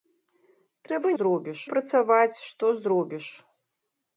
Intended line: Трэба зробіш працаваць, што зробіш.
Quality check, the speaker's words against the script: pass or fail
pass